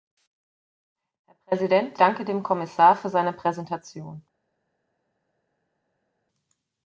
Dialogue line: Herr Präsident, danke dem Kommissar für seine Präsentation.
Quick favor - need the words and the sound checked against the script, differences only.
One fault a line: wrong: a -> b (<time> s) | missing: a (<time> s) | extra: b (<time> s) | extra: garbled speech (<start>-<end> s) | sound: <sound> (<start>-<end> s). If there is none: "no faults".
no faults